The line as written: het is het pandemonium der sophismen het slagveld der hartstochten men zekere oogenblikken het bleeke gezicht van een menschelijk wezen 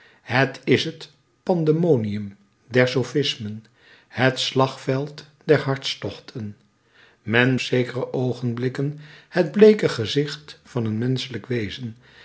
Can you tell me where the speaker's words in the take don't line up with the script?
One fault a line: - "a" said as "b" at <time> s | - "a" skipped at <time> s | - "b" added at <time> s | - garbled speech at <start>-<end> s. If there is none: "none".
none